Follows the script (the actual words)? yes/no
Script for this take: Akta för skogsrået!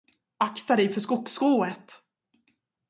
no